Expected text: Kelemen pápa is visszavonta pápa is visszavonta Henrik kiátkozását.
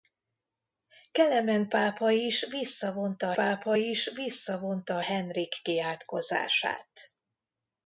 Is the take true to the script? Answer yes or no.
yes